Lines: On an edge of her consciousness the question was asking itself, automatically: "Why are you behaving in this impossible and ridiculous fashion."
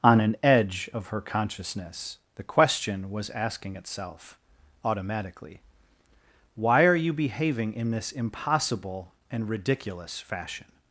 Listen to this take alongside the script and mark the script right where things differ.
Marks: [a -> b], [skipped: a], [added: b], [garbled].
On an edge of her consciousness the question was asking itself, automatically: "Why are you behaving in this impossible and ridiculous fashion."